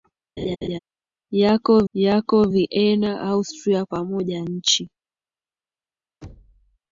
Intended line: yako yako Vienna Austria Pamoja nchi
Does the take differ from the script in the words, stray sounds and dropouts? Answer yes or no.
yes